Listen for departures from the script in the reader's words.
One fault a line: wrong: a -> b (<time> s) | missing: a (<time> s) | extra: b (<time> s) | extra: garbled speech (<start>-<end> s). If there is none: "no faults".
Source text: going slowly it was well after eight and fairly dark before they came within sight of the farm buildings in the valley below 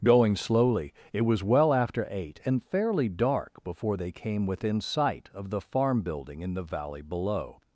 wrong: buildings -> building (6.0 s)